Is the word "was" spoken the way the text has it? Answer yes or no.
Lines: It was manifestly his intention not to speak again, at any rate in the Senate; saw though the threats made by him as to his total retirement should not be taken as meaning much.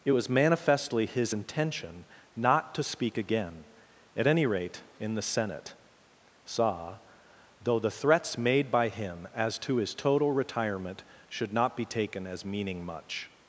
yes